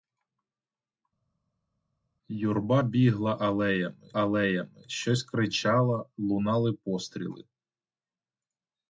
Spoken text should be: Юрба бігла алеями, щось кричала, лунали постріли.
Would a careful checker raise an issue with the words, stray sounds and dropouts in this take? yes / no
yes